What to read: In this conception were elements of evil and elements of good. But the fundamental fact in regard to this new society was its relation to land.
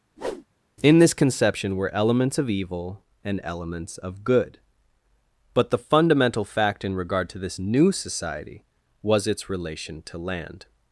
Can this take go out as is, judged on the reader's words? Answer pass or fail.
pass